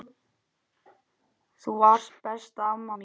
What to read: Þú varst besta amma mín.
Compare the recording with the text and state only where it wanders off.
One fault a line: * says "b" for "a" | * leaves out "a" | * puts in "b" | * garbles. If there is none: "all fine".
all fine